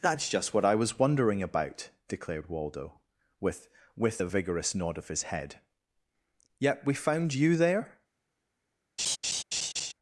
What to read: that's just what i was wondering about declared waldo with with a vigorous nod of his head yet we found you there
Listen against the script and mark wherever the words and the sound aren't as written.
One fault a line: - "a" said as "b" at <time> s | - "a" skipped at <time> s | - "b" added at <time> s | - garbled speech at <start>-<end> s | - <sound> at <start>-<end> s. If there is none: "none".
- laugh at 9.0-9.9 s